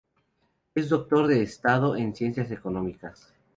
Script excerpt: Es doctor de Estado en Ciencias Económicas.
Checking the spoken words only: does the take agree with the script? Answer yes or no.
yes